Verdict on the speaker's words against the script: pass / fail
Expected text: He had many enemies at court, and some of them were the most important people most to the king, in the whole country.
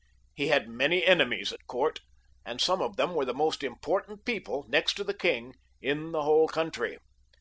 fail